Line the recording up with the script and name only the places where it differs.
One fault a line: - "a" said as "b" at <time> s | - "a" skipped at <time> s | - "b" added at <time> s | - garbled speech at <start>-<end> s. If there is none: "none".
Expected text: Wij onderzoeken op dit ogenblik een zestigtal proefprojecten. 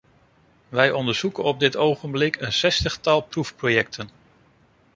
none